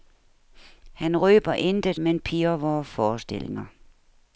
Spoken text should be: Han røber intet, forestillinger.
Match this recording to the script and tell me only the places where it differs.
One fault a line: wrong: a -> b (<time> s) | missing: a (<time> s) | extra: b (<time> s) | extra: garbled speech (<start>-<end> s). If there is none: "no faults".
extra: men pirrer vore (2.0 s)